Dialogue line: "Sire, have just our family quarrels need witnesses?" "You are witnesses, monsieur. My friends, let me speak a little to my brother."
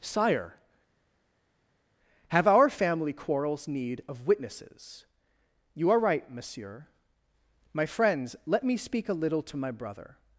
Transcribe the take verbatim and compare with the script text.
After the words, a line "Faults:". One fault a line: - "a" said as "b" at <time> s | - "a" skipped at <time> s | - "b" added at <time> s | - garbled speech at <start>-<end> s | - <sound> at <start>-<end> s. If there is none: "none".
"Sire, have our family quarrels need of witnesses?" "You are right, monsieur. My friends, let me speak a little to my brother."
Faults:
- "just" skipped at 2.5 s
- "of" added at 4.1 s
- "witnesses" said as "right" at 6.0 s